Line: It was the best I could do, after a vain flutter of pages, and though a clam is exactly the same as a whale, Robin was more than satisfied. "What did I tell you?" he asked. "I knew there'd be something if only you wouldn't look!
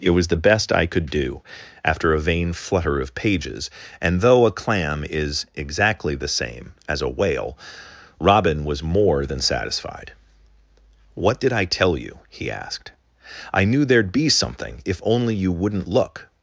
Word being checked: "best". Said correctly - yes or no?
yes